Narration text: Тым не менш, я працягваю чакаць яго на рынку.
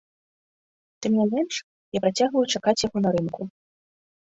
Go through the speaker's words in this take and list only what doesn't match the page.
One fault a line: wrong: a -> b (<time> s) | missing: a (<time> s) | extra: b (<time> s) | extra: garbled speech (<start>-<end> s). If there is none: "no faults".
no faults